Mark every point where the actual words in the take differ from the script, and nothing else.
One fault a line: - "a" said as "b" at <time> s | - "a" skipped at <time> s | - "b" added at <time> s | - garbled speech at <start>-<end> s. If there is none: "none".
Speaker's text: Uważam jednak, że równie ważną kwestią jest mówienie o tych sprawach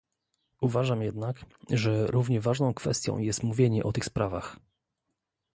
none